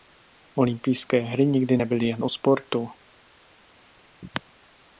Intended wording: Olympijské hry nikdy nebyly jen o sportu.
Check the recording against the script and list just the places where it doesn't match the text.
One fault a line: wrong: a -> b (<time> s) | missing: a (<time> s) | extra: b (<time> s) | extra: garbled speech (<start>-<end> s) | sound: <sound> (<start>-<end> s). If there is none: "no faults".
no faults